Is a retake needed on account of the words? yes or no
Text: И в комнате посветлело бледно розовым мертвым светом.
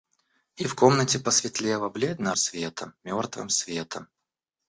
yes